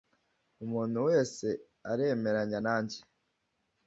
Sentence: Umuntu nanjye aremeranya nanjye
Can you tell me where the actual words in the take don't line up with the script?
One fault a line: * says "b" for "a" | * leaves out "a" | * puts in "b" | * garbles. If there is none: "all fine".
* says "wese" for "nanjye"